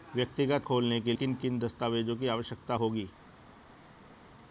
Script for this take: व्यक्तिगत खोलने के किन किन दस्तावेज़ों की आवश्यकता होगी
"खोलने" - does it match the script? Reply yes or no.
yes